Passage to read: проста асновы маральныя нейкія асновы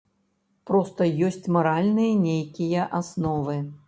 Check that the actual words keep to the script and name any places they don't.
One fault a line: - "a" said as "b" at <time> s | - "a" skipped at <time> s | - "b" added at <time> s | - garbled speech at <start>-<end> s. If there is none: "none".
- "асновы" said as "ёсць" at 1.3 s